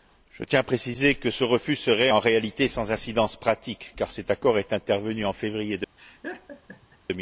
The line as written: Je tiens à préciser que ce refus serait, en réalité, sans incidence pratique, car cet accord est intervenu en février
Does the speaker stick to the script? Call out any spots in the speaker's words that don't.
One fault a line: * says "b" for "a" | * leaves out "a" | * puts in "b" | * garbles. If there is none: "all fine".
all fine